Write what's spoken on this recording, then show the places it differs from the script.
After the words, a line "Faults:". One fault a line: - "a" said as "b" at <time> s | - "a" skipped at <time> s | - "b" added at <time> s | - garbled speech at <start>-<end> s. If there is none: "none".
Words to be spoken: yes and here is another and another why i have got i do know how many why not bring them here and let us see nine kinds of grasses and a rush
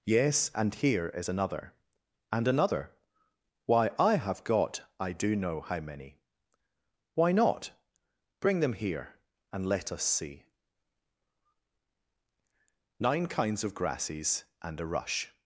yes and here is another and another why i have got i do know how many why not bring them here and let us see nine kinds of grasses and a rush
Faults:
none